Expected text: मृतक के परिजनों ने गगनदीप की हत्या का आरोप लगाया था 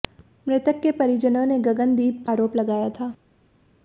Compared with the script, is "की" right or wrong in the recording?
wrong